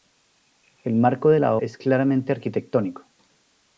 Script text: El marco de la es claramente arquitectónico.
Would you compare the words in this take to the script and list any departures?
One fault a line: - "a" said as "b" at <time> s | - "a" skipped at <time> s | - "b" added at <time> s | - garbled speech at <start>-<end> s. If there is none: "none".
none